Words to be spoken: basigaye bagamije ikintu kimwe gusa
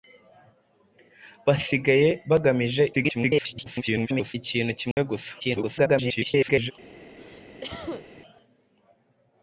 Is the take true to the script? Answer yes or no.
no